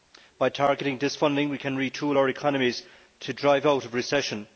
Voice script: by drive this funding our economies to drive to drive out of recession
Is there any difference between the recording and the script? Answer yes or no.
yes